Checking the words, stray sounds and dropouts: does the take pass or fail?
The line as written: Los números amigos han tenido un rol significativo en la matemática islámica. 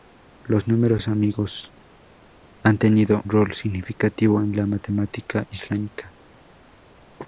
fail